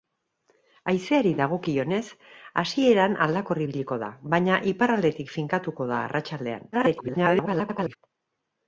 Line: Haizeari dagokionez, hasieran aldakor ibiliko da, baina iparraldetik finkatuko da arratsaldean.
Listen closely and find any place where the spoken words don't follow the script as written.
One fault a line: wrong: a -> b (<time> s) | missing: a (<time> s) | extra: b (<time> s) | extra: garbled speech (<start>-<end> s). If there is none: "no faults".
extra: garbled speech (6.7-8.0 s)